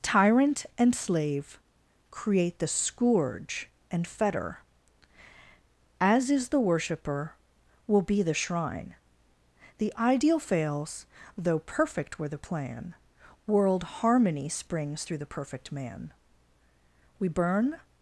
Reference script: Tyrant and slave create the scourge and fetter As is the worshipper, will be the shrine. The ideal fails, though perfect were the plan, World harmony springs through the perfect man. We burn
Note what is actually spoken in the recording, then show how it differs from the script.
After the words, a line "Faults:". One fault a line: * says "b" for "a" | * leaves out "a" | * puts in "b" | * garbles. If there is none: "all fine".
Tyrant and slave create the scourge and fetter As is the worshipper, will be the shrine. The ideal fails, though perfect were the plan, World harmony springs through the perfect man. We burn
Faults:
all fine